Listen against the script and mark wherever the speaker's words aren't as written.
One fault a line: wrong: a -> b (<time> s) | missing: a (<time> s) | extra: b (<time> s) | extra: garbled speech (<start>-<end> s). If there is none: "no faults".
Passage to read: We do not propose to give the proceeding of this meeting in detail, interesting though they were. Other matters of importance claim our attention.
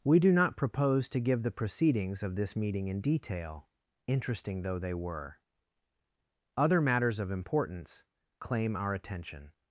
wrong: proceeding -> proceedings (1.5 s)